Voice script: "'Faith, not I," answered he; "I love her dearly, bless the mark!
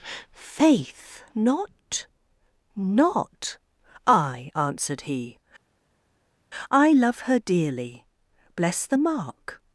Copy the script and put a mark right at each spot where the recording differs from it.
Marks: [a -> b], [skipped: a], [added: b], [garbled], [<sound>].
"'Faith, not [added: not] I," answered he; "I love her dearly, bless the mark!